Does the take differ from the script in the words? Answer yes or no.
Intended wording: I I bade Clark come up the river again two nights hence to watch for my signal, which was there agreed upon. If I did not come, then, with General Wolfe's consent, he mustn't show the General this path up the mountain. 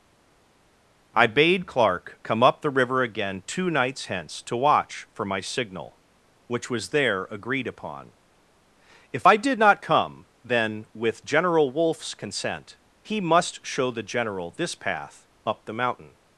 yes